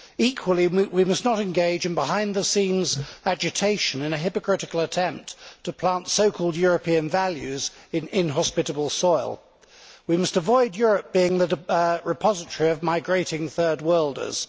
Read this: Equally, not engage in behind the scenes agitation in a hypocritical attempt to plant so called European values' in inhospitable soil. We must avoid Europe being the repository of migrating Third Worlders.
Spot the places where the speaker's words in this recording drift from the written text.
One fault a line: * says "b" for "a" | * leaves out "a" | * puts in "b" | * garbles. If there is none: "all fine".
* puts in "we must"